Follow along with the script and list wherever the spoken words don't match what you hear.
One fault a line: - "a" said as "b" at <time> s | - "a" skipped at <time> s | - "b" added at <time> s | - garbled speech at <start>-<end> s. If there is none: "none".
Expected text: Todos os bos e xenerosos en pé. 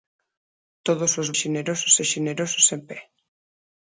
- "bos" said as "xenerosos" at 1.4 s